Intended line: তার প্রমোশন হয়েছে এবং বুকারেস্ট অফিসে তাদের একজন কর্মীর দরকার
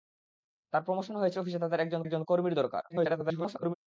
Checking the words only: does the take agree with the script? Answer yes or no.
no